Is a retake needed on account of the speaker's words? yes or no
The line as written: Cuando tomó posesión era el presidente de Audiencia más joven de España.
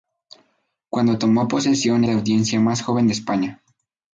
yes